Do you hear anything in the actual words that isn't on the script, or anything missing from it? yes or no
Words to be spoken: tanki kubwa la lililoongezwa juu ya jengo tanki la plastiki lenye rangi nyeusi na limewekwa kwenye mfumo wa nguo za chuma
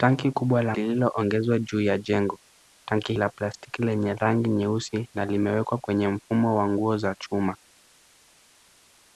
no